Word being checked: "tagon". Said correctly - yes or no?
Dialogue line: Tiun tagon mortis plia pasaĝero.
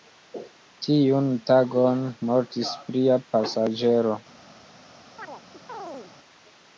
yes